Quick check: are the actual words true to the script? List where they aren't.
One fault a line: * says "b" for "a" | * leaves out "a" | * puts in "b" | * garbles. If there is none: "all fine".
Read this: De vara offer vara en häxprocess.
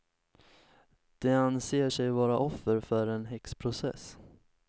* puts in "anser sig"
* says "för" for "vara"